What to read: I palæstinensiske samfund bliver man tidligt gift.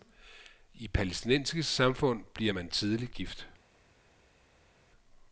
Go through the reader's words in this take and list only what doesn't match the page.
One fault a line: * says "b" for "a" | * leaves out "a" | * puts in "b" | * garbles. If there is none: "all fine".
all fine